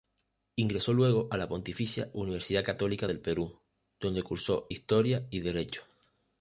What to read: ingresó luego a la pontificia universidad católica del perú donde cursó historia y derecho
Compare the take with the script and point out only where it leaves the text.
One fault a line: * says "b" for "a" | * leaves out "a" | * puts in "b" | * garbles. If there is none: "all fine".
all fine